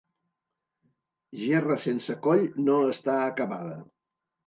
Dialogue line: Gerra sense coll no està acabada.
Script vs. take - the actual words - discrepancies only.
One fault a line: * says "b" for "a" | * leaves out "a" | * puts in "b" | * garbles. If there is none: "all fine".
all fine